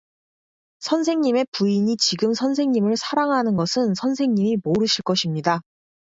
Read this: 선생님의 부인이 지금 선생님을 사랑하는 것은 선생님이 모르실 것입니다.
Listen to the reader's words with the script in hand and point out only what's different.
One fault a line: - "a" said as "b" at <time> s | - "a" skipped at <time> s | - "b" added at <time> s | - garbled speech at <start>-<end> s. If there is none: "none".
none